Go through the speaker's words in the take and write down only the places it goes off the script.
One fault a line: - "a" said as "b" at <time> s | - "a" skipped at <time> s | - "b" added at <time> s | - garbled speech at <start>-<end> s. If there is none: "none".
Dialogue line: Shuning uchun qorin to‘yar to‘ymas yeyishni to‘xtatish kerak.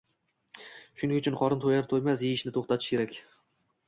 none